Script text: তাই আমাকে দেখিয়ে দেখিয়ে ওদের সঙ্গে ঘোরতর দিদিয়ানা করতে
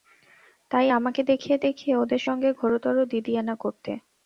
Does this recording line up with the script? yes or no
yes